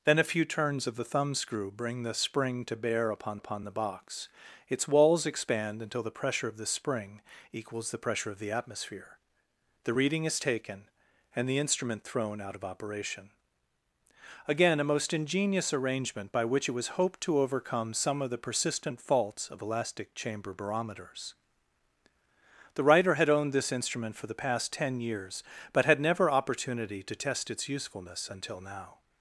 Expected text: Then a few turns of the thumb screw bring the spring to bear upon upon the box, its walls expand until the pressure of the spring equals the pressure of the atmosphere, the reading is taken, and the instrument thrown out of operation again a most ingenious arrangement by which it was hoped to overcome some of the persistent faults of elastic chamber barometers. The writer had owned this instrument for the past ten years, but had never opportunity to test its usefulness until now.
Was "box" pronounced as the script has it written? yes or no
yes